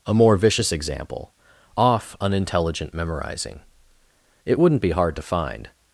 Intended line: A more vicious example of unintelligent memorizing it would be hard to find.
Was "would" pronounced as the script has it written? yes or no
no